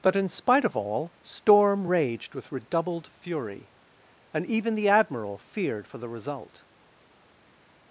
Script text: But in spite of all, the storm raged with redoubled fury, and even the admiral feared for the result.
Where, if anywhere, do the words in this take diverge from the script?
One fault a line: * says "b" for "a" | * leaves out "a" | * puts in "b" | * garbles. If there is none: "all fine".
* leaves out "the"